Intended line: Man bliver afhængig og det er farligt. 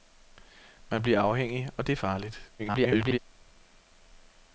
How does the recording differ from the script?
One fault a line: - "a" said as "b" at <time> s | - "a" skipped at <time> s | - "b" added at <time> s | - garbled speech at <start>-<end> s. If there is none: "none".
- garbled speech at 2.6-3.2 s